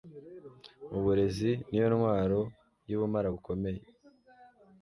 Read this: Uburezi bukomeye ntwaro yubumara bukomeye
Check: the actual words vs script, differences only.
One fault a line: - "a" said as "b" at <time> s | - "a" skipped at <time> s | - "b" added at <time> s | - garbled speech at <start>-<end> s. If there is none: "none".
- "bukomeye" said as "niyo" at 1.7 s